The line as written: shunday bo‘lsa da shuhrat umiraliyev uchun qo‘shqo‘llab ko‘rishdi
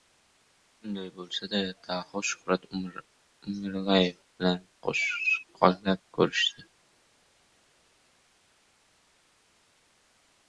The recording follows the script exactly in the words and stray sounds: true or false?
false